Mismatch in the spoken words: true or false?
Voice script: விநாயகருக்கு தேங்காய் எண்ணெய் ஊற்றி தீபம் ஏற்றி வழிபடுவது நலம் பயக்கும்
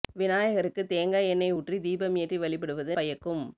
true